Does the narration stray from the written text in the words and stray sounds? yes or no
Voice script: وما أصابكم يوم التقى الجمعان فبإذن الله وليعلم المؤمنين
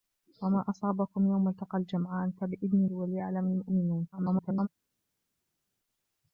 yes